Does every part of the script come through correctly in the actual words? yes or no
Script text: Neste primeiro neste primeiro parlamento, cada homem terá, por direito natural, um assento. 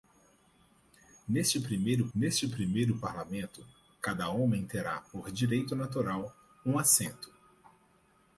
yes